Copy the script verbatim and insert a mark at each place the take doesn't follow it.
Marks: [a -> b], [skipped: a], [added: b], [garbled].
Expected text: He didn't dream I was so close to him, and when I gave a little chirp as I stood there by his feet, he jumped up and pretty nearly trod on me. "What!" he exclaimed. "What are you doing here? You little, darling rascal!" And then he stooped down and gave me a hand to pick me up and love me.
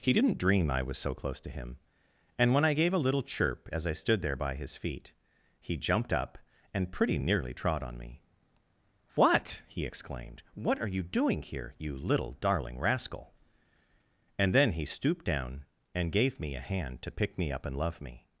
He didn't dream I was so close to him, and when I gave a little chirp as I stood there by his feet, he jumped up and pretty nearly trod on me. "What!" he exclaimed. "What are you doing here? You little, darling rascal!" And then he stooped down and gave me a hand to pick me up and love me.